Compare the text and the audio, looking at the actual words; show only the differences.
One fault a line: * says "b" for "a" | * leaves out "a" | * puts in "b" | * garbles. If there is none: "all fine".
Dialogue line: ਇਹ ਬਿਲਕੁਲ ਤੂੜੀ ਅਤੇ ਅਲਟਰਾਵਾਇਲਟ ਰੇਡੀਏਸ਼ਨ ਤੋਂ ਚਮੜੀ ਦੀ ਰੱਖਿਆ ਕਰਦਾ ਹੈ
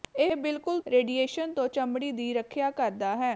* leaves out "ਤੂੜੀ ਅਤੇ ਅਲਟਰਾਵਾਇਲਟ"